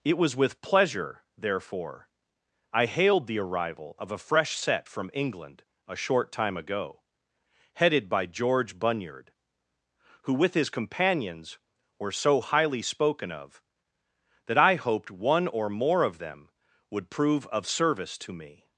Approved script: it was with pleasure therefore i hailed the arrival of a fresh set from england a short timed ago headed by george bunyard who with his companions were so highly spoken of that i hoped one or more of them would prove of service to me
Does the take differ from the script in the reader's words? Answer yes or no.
yes